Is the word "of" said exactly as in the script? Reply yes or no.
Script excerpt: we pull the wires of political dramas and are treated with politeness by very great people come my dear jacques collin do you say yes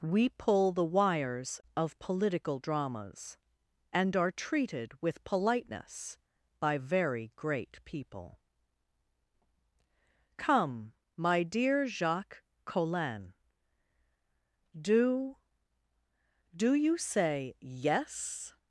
yes